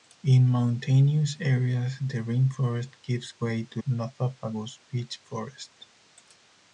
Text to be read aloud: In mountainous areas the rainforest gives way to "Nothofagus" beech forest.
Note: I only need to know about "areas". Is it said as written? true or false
true